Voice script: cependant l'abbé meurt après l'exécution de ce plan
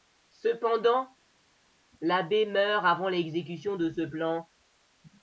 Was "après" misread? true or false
true